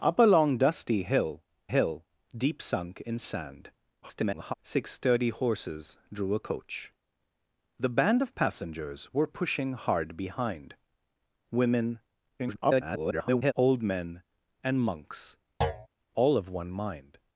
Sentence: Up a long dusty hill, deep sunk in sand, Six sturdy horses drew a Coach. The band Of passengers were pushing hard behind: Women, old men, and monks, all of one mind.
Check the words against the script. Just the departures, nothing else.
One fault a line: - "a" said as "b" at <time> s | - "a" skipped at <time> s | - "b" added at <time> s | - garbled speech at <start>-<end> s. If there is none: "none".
- "hill" added at 1.7 s
- garbled speech at 4.0-4.5 s
- garbled speech at 12.4-13.5 s